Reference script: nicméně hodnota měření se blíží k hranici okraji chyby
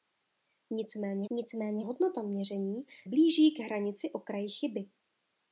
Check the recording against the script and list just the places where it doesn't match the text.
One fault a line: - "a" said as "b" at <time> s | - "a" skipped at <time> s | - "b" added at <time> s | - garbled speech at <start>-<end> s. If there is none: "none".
- "nicméně" added at 1.3 s
- "se" skipped at 2.9 s